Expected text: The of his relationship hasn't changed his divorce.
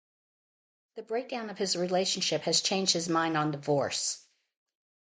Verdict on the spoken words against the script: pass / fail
fail